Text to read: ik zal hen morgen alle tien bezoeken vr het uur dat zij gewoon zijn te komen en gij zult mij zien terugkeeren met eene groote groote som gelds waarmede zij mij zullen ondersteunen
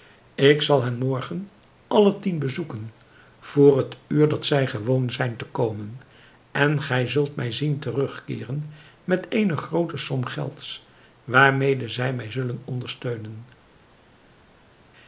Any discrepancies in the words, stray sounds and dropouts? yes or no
yes